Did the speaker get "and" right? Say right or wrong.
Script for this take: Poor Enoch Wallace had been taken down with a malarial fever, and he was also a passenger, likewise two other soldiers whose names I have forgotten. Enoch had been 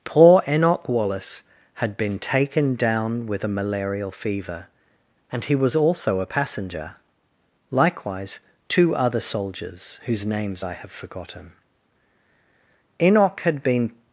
right